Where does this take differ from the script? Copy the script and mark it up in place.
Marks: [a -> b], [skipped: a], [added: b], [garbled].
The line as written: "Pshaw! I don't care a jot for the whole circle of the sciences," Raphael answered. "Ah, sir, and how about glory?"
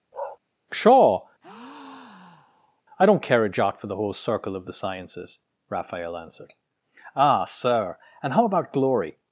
"Pshaw! I don't care a jot for the whole circle of the sciences," Raphael answered. "Ah, sir, and how about glory?"